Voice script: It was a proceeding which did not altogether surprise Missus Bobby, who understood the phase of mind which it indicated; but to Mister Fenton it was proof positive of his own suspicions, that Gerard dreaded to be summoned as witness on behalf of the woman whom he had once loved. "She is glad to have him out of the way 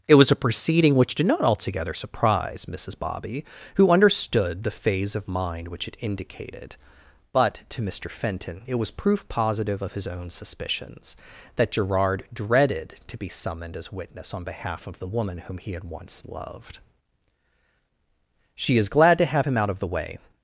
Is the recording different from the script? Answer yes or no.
no